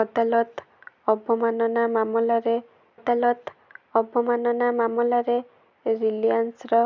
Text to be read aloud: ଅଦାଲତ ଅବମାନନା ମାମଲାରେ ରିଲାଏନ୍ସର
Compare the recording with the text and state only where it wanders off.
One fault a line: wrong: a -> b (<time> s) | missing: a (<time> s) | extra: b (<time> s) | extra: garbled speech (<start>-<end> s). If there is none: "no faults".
extra: ଅଦାଲତ ଅବମାନନା ମାମଲାରେ (2.9 s)